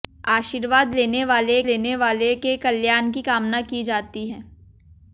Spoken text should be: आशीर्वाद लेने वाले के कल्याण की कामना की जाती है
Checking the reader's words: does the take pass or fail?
fail